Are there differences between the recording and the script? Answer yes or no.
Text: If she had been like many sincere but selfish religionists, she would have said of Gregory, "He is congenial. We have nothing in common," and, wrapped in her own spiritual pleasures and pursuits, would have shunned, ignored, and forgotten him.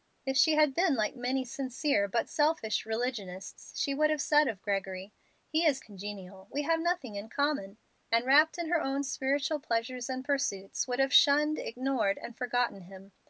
no